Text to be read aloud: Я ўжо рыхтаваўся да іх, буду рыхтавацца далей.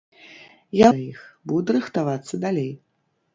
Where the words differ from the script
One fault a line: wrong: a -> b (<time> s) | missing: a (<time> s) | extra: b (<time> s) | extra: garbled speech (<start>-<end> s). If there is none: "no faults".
missing: ўжо рыхтаваўся (0.9 s)